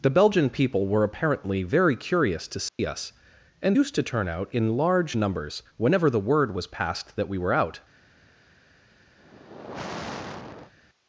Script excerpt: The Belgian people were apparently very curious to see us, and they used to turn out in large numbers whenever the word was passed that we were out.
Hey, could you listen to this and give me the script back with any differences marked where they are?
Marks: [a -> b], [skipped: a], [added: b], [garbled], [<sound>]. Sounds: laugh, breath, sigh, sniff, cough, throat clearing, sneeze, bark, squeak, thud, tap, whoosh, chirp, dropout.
The Belgian people were apparently very curious to see [dropout] us, and [skipped: they] used to turn out in large numbers whenever the word was passed that we were out. [sigh]